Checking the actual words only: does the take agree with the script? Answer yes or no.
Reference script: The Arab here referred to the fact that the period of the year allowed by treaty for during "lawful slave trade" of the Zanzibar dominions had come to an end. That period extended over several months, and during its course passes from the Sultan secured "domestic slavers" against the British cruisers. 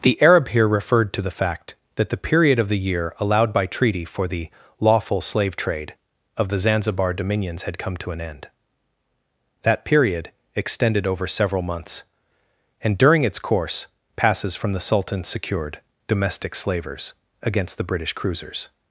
no